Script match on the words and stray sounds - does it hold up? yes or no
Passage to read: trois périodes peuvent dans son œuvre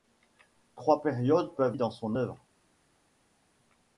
yes